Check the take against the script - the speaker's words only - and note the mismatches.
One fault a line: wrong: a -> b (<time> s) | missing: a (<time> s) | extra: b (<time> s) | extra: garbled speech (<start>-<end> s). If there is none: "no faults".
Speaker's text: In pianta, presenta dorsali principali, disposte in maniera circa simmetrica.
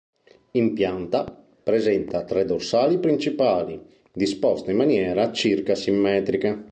extra: tre (2.2 s)